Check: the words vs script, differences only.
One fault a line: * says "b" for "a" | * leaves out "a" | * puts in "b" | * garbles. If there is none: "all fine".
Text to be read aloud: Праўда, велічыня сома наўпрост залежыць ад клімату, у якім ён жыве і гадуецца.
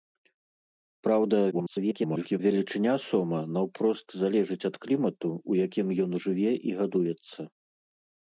* garbles